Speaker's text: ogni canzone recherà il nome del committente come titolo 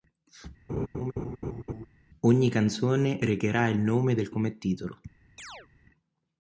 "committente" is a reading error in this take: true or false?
true